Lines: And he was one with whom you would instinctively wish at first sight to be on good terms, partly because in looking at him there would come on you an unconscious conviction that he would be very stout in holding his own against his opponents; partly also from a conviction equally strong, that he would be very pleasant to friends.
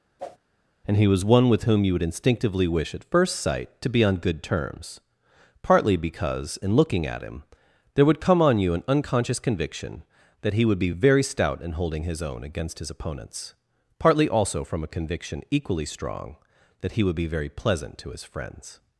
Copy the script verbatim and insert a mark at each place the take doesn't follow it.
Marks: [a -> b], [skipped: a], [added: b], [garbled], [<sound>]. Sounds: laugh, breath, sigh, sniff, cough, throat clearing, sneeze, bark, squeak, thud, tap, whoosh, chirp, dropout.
[whoosh] And he was one with whom you would instinctively wish at first sight to be on good terms, partly because in looking at him there would come on you an unconscious conviction that he would be very stout in holding his own against his opponents; partly also from a conviction equally strong, that he would be very pleasant to [added: his] friends.